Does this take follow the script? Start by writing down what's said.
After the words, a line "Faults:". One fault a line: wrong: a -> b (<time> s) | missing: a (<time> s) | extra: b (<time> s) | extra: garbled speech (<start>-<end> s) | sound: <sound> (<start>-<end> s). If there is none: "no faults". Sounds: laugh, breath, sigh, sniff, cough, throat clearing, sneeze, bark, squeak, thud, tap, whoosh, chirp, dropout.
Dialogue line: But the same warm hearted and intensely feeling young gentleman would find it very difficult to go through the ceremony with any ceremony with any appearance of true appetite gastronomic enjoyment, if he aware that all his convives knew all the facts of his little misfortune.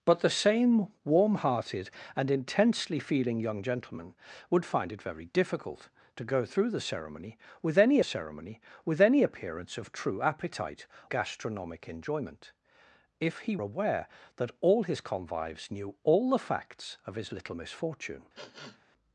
But the same warm hearted and intensely feeling young gentleman would find it very difficult to go through the ceremony with any ceremony with any appearance of true appetite gastronomic enjoyment, if he aware that all his convives knew all the facts of his little misfortune.
Faults:
sound: sniff (18.3-18.8 s)